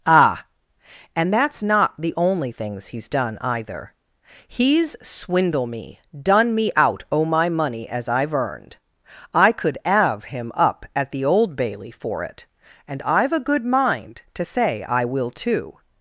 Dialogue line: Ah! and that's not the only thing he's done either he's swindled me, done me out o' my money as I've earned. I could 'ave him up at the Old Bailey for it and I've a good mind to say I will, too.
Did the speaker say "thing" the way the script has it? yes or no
no